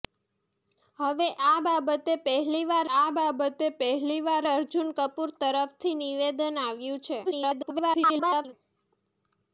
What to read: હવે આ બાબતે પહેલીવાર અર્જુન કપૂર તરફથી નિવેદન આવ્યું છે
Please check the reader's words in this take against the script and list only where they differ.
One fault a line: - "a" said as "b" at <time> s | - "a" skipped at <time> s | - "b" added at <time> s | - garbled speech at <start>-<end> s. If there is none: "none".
- "આ બાબતે પહેલીવાર" added at 2.9 s
- garbled speech at 7.3-8.5 s